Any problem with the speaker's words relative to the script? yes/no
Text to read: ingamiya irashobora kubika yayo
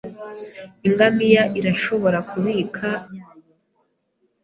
no